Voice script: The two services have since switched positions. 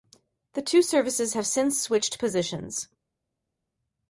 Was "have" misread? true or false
false